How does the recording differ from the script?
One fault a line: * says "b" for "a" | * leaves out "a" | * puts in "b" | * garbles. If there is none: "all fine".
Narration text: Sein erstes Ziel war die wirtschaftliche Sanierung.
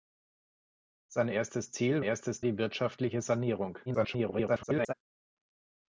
* says "erstes" for "war"
* garbles